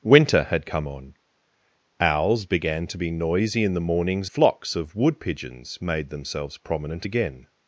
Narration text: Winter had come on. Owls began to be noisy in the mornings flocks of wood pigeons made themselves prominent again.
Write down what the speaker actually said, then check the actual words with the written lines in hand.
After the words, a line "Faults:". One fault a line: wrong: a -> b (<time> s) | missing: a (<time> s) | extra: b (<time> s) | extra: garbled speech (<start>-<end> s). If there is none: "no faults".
Winter had come on. Owls began to be noisy in the mornings flocks of wood pigeons made themselves prominent again.
Faults:
no faults